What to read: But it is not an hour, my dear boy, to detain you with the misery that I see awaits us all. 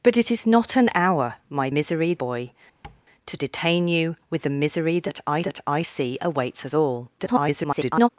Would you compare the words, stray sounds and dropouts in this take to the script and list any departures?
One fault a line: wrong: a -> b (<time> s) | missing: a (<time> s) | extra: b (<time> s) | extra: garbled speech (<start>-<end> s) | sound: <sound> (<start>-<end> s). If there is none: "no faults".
wrong: dear -> misery (1.7 s)
sound: tap (2.8-3.0 s)
extra: that I (5.4 s)
extra: garbled speech (7.2-8.1 s)